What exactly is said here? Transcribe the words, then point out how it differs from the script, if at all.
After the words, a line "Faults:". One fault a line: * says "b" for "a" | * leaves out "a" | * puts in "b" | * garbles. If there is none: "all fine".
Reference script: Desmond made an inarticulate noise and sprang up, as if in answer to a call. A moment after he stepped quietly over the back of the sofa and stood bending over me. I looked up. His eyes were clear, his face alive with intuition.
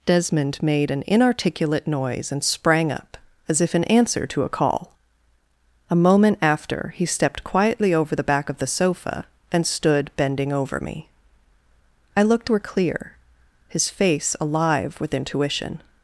Desmond made an inarticulate noise and sprang up, as if in answer to a call. A moment after he stepped quietly over the back of the sofa and stood bending over me. I looked were clear, his face alive with intuition.
Faults:
* leaves out "up His eyes"